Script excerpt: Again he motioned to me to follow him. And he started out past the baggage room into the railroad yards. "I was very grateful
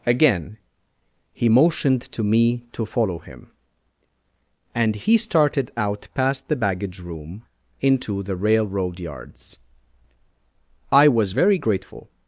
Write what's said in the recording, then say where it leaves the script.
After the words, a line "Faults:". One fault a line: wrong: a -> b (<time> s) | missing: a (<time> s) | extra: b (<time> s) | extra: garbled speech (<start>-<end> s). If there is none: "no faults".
Again he motioned to me to follow him. And he started out past the baggage room into the railroad yards. "I was very grateful
Faults:
no faults